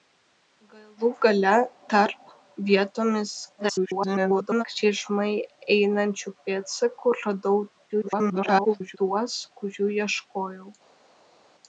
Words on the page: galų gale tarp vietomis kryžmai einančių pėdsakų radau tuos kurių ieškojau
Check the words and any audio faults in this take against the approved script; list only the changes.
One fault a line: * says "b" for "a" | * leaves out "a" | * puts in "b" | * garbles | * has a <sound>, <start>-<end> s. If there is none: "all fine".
* garbles
* garbles